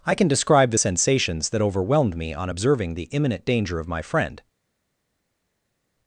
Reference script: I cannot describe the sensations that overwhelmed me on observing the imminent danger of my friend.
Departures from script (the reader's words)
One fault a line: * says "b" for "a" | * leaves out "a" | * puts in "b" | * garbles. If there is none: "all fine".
* says "can" for "cannot"